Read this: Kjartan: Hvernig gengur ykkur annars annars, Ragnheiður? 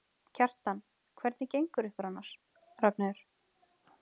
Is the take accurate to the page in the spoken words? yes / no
no